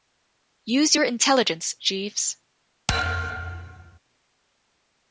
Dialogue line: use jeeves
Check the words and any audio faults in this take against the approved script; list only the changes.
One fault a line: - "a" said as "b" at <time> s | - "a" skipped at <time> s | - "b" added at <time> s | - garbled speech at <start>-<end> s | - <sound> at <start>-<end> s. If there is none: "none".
- "your intelligence" added at 0.9 s
- thud at 2.9-4.0 s